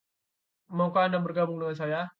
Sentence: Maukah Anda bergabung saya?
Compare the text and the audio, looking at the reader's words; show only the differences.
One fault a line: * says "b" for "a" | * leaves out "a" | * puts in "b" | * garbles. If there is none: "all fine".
* puts in "dengan"